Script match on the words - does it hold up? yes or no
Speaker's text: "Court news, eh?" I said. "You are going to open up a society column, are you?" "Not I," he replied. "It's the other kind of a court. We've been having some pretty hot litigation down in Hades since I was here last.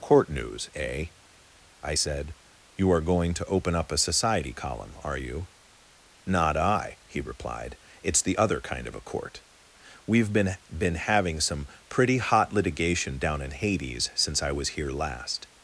no